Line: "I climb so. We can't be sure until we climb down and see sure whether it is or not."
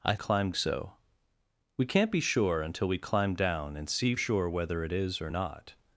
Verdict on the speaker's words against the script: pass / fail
pass